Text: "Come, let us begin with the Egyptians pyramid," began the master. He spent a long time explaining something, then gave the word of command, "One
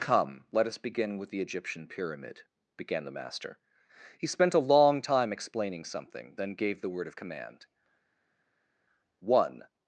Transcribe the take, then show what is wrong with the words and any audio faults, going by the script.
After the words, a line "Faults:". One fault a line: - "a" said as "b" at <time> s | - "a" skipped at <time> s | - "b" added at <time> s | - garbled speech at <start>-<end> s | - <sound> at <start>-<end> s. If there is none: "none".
"Come, let us begin with the Egyptian pyramid," began the master. He spent a long time explaining something, then gave the word of command, "One
Faults:
- "Egyptians" said as "Egyptian" at 1.4 s